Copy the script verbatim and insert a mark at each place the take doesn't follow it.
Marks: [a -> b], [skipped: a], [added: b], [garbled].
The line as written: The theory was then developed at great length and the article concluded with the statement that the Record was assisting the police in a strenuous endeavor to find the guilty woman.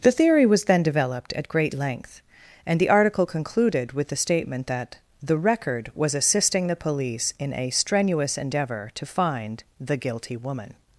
The theory was then developed at great length and the article concluded with the statement that the Record was assisting the police in a strenuous endeavor to find the guilty woman.